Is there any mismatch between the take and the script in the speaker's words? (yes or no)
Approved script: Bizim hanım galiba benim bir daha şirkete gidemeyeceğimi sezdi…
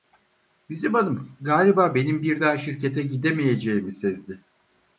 no